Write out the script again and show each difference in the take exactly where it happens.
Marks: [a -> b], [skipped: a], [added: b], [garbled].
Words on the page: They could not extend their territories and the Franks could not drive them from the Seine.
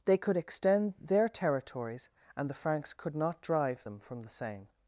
They could [skipped: not] extend their territories and the Franks could not drive them from the Seine.